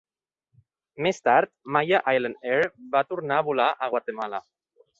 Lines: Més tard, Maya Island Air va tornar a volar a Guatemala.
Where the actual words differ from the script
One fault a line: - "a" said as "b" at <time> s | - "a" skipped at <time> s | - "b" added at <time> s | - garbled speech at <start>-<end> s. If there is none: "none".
none